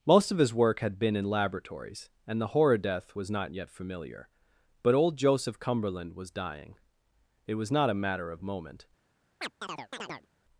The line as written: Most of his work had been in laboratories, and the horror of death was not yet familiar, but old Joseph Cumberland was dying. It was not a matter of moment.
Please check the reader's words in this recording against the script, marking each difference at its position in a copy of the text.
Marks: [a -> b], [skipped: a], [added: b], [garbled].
Most of his work had been in laboratories, and the horror [skipped: of] death was not yet familiar, but old Joseph Cumberland was dying. It was not a matter of moment.